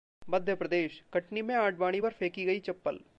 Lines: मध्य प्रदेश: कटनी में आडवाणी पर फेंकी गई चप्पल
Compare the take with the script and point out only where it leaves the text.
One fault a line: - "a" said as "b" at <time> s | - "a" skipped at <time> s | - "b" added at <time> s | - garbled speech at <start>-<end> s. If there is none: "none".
none